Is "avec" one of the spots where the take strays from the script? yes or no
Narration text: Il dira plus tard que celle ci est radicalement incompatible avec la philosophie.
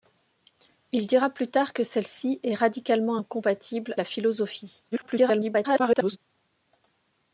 yes